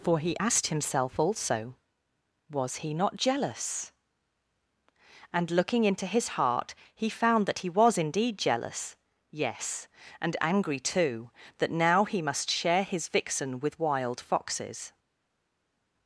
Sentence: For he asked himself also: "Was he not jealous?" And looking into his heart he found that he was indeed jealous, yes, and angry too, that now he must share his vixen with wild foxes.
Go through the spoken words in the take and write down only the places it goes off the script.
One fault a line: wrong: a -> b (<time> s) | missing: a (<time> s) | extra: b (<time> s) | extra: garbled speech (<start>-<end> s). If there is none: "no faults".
no faults